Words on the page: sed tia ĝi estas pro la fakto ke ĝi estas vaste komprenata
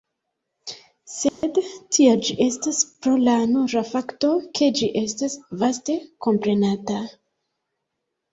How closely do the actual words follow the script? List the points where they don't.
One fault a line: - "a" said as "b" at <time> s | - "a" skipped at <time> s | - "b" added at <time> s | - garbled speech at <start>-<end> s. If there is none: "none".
- "nura" added at 3.5 s